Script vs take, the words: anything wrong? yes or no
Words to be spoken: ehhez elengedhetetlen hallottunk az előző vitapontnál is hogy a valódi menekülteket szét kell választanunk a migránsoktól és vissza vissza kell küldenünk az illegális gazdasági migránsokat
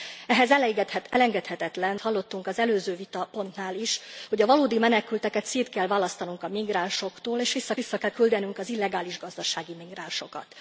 no